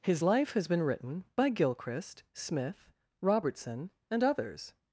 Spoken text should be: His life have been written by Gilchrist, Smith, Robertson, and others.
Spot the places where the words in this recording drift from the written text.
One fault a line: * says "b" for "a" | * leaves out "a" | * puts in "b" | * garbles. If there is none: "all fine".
* says "has" for "have"